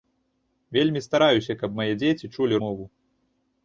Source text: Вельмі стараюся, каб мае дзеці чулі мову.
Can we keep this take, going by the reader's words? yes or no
yes